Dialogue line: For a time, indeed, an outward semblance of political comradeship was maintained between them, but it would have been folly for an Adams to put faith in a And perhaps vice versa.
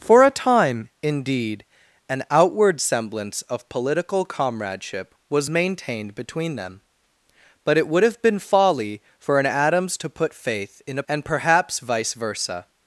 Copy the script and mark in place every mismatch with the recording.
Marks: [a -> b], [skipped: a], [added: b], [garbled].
For a time, indeed, an outward semblance of political comradeship was maintained between them, but it would have been folly for an Adams to put faith in a And perhaps vice versa.